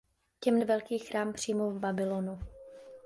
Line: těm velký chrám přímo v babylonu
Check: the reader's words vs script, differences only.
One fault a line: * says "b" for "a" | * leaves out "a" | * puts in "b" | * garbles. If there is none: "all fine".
all fine